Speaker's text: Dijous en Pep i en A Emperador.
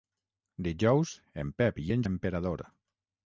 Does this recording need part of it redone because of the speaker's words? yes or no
no